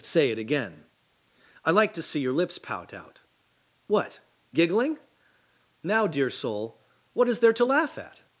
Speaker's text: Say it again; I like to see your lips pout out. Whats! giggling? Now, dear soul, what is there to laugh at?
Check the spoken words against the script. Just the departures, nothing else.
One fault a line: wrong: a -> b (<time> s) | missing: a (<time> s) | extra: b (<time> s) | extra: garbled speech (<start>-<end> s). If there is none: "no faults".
wrong: Whats -> What (3.9 s)